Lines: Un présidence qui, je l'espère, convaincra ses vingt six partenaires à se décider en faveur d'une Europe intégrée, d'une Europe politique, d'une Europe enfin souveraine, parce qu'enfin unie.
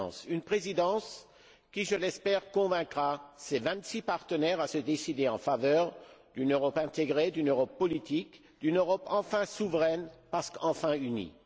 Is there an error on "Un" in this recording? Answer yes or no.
yes